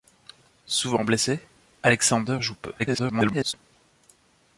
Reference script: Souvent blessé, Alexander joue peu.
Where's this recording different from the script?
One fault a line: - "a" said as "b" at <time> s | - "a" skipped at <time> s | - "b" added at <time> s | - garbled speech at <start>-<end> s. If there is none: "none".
- garbled speech at 2.8-3.5 s